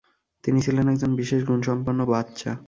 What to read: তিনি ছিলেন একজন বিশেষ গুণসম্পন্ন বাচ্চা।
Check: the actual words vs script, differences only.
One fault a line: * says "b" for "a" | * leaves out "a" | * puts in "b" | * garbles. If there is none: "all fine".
all fine